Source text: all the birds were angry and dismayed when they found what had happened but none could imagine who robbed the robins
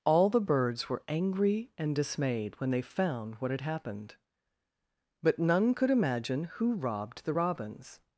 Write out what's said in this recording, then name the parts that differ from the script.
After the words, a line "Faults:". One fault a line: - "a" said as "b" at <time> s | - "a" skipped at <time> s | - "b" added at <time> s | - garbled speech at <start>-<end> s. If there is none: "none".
all the birds were angry and dismayed when they found what had happened but none could imagine who robbed the robins
Faults:
none